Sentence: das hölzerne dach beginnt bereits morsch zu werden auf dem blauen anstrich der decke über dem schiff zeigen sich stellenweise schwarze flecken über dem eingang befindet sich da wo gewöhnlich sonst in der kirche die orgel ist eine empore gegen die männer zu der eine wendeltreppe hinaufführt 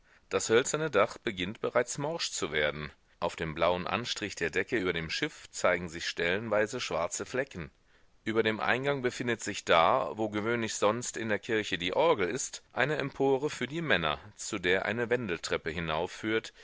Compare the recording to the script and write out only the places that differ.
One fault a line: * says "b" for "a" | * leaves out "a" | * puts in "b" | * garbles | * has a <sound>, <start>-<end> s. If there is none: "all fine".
* says "für" for "gegen"